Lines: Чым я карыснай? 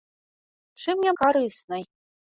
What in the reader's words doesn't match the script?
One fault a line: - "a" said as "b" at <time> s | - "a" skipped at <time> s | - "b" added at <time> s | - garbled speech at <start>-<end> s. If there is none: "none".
none